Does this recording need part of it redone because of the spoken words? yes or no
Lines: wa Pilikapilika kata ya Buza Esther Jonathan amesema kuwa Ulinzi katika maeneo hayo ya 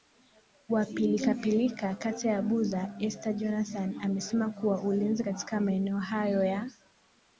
no